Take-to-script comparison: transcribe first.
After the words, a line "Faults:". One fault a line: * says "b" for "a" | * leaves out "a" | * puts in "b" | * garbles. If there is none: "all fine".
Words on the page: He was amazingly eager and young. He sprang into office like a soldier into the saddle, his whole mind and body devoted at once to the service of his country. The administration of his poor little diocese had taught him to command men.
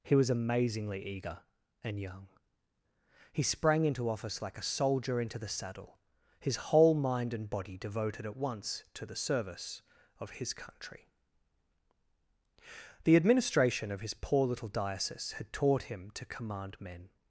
He was amazingly eager and young. He sprang into office like a soldier into the saddle, his whole mind and body devoted at once to the service of his country. The administration of his poor little diocese had taught him to command men.
Faults:
all fine